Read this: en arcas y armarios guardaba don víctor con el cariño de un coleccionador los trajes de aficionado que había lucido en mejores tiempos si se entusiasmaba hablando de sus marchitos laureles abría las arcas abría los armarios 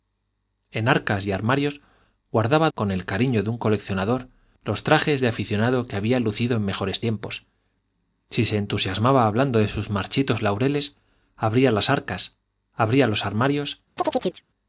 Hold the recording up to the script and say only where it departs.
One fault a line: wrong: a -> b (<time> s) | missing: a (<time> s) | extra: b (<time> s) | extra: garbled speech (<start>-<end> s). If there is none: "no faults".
missing: don víctor (2.7 s)